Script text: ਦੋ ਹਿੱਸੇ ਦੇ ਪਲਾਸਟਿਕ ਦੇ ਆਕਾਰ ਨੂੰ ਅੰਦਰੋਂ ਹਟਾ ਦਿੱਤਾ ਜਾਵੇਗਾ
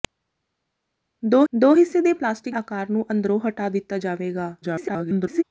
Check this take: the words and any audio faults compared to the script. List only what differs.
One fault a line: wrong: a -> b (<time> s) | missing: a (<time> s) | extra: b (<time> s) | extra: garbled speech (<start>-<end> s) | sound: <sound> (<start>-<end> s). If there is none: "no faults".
extra: ਦੋ (1.5 s)
missing: ਦੇ (2.6 s)
extra: garbled speech (4.6-5.4 s)